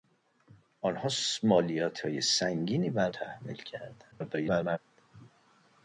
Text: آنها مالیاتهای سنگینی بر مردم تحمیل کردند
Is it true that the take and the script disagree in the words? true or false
true